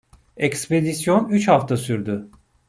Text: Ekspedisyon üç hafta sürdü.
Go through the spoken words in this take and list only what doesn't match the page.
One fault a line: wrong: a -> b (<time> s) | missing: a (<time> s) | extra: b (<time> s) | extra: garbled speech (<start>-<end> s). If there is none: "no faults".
no faults